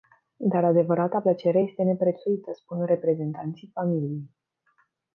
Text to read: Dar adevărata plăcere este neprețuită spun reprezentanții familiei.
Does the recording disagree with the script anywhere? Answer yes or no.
no